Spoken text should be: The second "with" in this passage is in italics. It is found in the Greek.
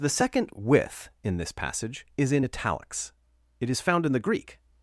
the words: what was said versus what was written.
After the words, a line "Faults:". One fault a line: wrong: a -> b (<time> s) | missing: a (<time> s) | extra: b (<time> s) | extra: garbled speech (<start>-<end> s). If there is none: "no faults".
The second "with" in this passage is in italics. It is found in the Greek.
Faults:
no faults